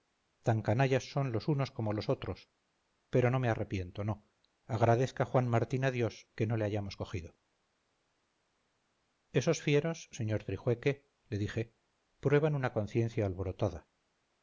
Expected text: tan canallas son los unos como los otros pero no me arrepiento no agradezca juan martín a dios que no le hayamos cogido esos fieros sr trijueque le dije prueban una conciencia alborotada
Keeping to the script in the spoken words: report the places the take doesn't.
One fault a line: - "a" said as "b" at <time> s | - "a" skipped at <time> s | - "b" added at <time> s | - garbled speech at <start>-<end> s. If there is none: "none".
none